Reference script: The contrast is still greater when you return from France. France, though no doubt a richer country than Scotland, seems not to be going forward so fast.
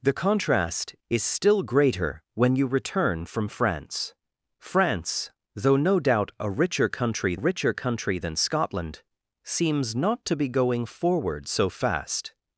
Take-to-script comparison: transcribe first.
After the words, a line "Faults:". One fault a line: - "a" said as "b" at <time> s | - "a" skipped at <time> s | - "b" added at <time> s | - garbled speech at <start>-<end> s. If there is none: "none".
The contrast is still greater when you return from France. France, though no doubt a richer country richer country than Scotland, seems not to be going forward so fast.
Faults:
- "richer country" added at 7.3 s